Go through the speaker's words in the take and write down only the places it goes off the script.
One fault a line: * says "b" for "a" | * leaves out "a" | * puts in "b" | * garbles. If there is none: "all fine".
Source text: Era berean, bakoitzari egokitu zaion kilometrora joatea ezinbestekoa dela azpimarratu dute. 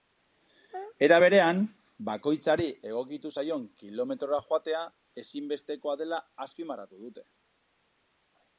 all fine